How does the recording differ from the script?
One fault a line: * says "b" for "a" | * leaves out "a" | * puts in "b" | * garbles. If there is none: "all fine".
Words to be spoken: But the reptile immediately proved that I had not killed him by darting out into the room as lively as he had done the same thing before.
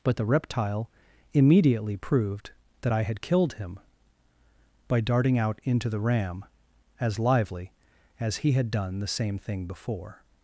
* leaves out "not"
* says "ram" for "room"